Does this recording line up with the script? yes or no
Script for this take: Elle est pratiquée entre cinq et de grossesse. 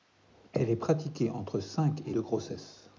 yes